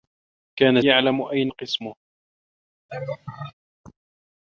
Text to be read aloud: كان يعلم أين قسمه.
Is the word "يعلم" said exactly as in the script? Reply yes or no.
yes